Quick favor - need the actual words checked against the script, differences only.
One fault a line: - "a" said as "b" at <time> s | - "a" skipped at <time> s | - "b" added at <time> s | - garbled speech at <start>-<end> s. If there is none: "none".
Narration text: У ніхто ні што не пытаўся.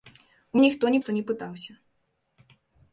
none